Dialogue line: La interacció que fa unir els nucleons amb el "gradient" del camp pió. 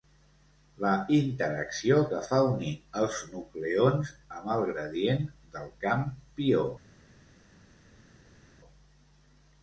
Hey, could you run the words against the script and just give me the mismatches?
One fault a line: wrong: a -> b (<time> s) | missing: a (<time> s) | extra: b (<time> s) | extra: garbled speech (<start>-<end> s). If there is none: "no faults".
no faults